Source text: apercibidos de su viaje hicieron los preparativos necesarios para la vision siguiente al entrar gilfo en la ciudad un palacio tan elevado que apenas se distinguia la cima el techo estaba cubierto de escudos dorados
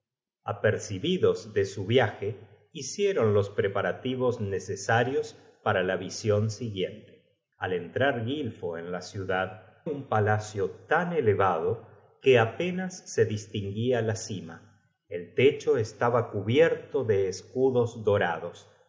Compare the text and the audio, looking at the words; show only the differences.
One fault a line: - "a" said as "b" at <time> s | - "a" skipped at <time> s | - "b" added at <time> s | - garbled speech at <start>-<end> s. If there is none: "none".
none